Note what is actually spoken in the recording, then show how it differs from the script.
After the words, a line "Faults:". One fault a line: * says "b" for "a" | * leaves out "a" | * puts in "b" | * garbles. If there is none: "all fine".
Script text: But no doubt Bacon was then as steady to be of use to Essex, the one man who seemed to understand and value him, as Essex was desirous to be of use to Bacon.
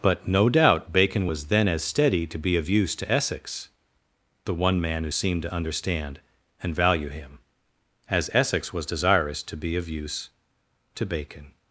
But no doubt Bacon was then as steady to be of use to Essex, the one man who seemed to understand and value him, as Essex was desirous to be of use to Bacon.
Faults:
all fine